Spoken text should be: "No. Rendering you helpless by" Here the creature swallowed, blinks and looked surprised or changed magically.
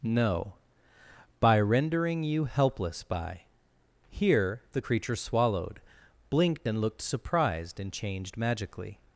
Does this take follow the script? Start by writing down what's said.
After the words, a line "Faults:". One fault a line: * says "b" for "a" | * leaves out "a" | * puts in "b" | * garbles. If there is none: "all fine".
"No. By rendering you helpless by" Here the creature swallowed, blinked and looked surprised and changed magically.
Faults:
* puts in "By"
* says "blinked" for "blinks"
* says "and" for "or"